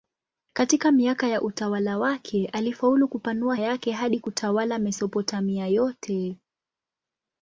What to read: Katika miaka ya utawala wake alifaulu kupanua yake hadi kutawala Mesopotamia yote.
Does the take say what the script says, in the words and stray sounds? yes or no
yes